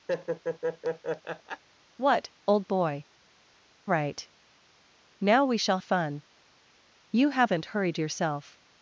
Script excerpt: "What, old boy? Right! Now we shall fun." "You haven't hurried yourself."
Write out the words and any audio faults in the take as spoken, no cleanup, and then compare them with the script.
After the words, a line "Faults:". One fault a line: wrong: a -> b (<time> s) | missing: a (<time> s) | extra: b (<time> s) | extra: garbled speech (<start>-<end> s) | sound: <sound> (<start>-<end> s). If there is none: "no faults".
"What, old boy? Right! Now we shall fun." "You haven't hurried yourself."
Faults:
sound: laugh (0.1-1.6 s)